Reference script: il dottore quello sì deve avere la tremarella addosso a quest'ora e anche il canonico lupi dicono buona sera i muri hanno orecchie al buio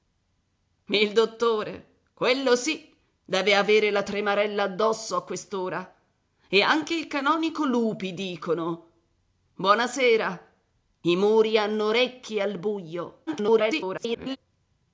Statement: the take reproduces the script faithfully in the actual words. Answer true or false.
false